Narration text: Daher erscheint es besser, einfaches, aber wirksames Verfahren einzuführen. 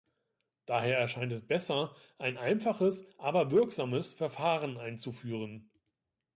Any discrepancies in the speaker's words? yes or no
yes